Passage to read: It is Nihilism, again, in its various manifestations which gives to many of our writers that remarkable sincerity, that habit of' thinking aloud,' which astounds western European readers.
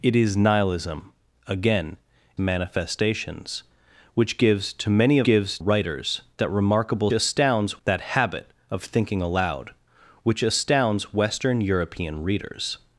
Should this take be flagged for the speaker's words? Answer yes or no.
yes